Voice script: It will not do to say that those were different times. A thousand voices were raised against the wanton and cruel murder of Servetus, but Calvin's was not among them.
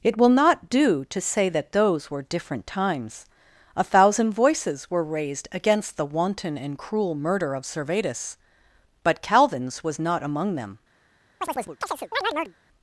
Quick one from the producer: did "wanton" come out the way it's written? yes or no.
yes